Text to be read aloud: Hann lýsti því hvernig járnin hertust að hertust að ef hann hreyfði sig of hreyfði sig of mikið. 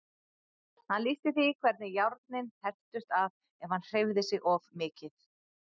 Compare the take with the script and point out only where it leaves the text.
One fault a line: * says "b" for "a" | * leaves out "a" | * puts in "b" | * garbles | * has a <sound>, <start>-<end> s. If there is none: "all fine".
* leaves out "hertust að"
* leaves out "hreyfði sig of"